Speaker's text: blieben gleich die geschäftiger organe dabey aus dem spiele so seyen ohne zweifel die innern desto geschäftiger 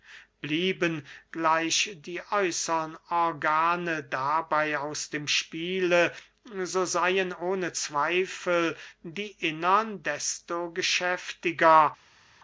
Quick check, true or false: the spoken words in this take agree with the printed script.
false